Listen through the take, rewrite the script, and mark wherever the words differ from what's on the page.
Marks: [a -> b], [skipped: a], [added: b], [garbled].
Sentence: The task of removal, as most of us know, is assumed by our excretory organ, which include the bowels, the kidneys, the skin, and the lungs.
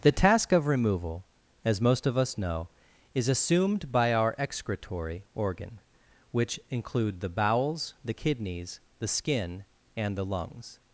The task of removal, as most of us know, is assumed by our excretory organ, which include the bowels, the kidneys, the skin, and the lungs.